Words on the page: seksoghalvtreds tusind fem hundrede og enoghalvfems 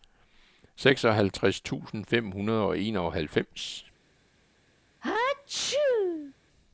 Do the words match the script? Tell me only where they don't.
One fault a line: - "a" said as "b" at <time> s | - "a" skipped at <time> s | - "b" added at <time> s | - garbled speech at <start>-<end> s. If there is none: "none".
none